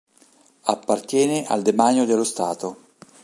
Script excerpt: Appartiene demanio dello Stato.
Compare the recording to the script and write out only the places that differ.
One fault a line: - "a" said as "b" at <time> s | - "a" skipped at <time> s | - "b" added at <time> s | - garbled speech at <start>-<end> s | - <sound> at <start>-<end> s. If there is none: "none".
- "al" added at 1.4 s